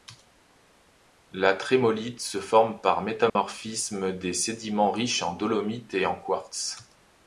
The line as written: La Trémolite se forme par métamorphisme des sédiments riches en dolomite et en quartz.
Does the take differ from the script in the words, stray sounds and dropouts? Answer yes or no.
yes